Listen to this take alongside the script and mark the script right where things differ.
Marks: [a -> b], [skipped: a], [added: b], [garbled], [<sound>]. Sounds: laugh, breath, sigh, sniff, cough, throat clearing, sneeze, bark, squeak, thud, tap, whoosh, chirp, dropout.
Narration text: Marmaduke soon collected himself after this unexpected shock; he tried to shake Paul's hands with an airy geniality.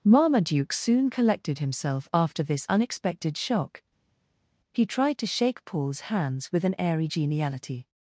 Marmaduke soon collected himself after this unexpected shock; he tried to shake Paul's hands with an airy geniality.